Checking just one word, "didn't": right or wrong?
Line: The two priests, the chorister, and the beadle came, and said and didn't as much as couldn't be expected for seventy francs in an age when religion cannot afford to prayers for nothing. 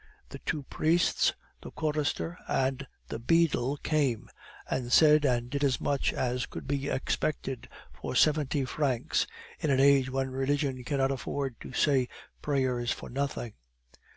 wrong